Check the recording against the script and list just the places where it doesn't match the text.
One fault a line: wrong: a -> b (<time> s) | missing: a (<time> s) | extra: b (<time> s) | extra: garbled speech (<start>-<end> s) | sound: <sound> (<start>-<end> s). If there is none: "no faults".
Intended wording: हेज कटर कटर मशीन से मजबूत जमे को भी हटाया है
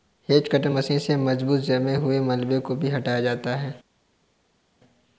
missing: कटर (0.7 s)
extra: हुए मलबे (1.9 s)
extra: जाता (3.2 s)